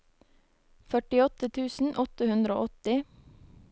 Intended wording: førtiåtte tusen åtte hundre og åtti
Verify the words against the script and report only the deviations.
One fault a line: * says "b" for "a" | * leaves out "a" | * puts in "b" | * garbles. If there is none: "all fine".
all fine